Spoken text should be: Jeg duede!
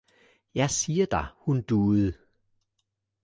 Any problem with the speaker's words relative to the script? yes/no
yes